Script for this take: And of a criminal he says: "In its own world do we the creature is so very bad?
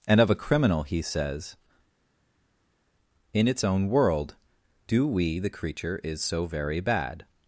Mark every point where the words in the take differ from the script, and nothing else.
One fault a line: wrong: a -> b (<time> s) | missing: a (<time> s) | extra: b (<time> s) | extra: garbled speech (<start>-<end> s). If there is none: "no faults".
no faults